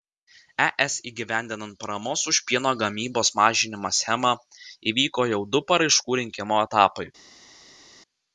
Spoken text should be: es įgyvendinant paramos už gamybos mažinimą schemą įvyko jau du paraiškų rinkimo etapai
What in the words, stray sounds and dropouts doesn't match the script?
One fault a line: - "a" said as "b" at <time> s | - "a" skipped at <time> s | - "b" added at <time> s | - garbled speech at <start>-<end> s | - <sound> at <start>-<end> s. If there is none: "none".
- "pieno" added at 2.5 s